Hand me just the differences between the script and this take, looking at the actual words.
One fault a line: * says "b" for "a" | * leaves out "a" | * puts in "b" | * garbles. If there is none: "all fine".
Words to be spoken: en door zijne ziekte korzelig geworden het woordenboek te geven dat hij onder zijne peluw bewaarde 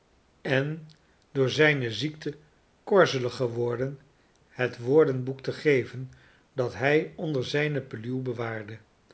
all fine